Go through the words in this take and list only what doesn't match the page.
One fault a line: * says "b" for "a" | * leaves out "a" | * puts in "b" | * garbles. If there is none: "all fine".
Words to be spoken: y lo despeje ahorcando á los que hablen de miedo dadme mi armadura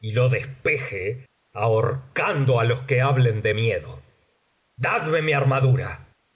all fine